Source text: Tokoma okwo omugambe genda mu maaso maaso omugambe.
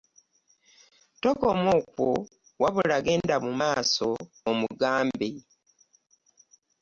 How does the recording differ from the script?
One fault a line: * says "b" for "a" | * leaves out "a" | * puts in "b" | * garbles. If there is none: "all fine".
* says "wabula" for "omugambe"
* leaves out "maaso"